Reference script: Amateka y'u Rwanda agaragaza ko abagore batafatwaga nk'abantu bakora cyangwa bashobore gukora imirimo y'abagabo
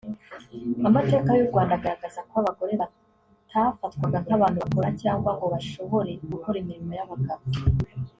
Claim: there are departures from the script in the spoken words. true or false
true